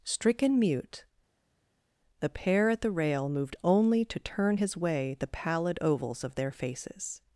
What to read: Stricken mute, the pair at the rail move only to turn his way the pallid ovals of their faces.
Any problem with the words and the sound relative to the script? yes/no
yes